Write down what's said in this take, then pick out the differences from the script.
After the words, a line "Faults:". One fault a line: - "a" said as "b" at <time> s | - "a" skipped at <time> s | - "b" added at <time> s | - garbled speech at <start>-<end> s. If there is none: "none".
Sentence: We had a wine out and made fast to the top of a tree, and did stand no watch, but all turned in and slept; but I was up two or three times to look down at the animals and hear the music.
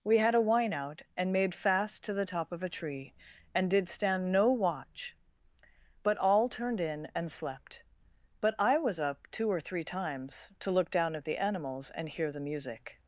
We had a wine out and made fast to the top of a tree, and did stand no watch, but all turned in and slept; but I was up two or three times to look down at the animals and hear the music.
Faults:
none